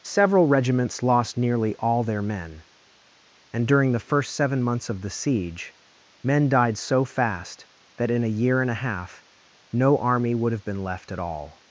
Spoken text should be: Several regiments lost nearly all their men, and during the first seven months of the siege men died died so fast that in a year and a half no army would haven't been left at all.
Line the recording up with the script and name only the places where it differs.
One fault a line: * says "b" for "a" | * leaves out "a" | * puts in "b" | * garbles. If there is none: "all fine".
* leaves out "died"
* says "have" for "haven't"